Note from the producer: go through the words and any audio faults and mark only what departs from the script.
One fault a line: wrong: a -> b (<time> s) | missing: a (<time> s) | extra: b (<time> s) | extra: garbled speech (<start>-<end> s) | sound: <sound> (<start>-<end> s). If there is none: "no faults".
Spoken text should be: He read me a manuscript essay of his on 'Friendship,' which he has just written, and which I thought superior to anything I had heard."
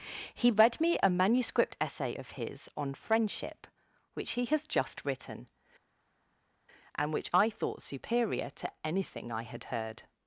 no faults